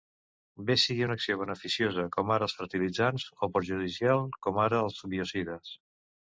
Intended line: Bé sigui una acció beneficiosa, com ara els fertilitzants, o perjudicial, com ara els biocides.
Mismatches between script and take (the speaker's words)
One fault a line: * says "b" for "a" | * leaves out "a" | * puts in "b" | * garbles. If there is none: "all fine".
all fine